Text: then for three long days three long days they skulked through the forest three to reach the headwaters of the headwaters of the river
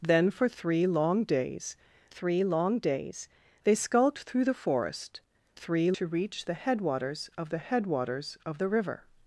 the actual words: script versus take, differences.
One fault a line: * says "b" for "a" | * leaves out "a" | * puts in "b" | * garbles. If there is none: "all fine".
all fine